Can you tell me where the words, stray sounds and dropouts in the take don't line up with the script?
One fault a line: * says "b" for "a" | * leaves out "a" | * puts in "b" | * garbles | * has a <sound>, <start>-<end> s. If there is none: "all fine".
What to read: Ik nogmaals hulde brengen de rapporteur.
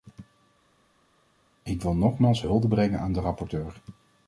* puts in "wil"
* puts in "aan"